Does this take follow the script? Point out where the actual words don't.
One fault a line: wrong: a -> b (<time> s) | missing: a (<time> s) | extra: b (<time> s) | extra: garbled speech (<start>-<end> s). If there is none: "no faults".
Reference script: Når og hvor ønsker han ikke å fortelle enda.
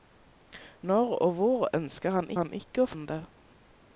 extra: han (2.4 s)
missing: fortelle (2.9 s)